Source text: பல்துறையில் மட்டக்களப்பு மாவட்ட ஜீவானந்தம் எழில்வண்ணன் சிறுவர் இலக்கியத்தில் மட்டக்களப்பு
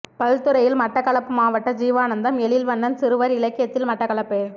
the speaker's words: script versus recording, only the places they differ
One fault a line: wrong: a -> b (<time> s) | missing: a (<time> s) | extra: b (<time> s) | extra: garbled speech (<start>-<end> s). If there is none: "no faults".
no faults